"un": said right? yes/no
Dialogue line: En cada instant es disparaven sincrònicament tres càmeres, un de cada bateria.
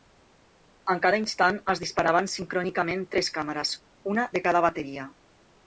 no